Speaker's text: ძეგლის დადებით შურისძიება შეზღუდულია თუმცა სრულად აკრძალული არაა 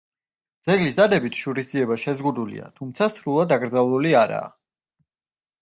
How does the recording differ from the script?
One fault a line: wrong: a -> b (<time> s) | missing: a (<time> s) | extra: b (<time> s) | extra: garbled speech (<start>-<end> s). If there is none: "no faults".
no faults